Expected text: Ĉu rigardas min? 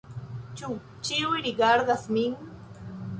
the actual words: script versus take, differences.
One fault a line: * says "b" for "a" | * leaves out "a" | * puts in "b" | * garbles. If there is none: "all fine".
* puts in "ĉiuj"